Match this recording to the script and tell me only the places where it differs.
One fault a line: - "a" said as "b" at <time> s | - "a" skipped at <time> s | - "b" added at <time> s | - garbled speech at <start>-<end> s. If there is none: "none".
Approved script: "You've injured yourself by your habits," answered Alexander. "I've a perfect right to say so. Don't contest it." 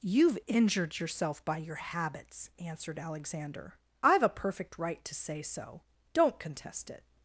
none